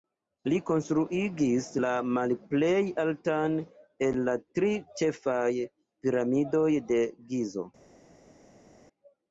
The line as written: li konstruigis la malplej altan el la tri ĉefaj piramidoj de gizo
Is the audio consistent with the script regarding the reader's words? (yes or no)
yes